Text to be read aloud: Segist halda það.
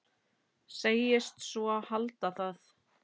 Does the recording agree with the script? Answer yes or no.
no